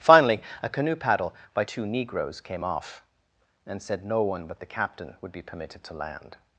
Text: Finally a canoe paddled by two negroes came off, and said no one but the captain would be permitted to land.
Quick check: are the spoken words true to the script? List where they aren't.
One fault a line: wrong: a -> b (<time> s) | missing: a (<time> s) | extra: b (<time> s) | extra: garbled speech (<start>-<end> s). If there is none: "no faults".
wrong: paddled -> paddle (0.9 s)